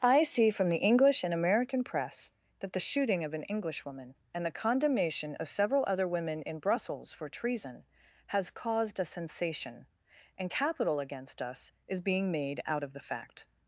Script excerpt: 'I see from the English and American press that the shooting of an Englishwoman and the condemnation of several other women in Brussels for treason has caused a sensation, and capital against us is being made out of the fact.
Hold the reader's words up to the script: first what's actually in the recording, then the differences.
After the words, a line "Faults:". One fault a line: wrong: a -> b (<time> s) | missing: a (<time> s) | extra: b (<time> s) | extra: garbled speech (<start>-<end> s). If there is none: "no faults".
'I see from the English and American press that the shooting of an Englishwoman and the condemnation of several other women in Brussels for treason has caused a sensation, and capital against us is being made out of the fact.
Faults:
no faults